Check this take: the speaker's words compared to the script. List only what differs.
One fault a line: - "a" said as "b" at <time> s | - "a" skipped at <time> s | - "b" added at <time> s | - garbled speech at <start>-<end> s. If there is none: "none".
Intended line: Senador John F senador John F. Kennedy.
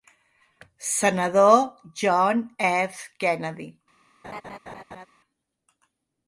- "senador John F" skipped at 3.1 s